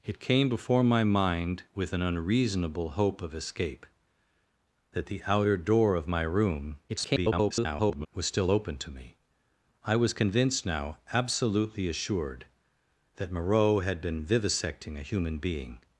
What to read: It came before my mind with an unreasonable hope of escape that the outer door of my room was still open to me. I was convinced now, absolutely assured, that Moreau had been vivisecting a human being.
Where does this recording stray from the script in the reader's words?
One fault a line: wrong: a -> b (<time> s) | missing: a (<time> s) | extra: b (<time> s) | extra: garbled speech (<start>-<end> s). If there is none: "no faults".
extra: garbled speech (6.9-8.1 s)